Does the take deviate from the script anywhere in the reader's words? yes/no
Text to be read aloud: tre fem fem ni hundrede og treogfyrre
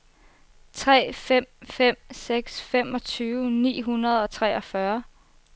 yes